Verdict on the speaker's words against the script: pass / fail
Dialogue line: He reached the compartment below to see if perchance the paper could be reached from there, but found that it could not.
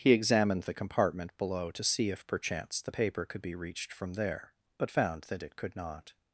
fail